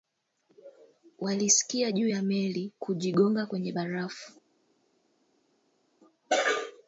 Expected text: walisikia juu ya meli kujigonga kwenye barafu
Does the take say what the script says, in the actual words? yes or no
yes